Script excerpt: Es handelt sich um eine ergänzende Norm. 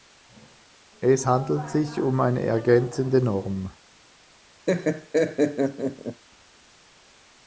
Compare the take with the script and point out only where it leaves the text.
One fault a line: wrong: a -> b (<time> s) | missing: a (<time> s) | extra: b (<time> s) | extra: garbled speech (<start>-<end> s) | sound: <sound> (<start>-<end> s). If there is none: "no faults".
sound: laugh (4.7-6.2 s)